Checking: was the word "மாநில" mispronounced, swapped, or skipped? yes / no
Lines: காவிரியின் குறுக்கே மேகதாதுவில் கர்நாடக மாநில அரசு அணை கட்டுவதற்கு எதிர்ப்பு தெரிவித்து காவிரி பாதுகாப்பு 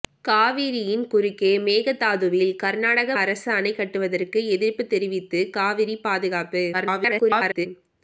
yes